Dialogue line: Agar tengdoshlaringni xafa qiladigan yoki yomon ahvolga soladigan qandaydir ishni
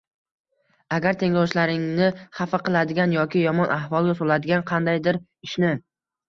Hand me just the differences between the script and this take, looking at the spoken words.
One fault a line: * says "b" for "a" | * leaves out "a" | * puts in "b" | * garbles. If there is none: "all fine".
all fine